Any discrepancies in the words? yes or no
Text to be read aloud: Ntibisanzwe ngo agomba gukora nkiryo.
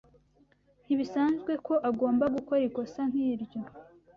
yes